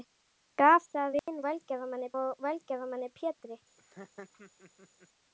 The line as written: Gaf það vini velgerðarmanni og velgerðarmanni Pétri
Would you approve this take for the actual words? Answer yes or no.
yes